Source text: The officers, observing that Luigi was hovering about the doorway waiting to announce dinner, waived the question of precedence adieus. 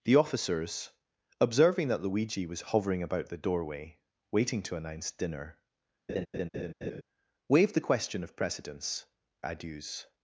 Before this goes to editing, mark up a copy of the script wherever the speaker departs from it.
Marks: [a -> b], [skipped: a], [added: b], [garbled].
The officers, observing that Luigi was hovering about the doorway waiting to announce dinner, waived the question of precedence adieus.